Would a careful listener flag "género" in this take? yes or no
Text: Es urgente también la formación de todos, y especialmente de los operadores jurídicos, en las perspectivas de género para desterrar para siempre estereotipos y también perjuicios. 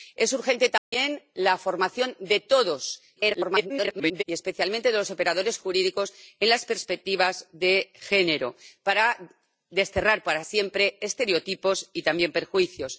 no